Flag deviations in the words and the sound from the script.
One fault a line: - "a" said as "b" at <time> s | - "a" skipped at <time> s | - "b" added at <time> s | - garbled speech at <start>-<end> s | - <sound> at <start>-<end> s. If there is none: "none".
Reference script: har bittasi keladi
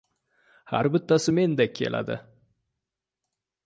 - "mendek" added at 1.3 s